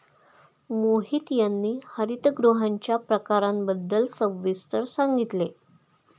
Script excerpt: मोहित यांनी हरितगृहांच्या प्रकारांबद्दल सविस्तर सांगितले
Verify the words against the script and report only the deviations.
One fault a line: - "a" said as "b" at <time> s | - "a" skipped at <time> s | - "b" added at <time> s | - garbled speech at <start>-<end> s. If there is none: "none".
none